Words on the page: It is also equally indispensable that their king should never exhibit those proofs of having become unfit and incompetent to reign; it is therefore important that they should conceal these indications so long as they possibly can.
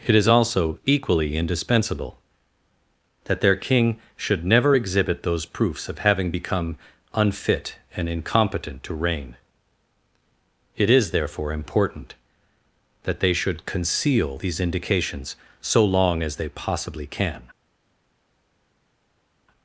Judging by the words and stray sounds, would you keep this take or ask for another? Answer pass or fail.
pass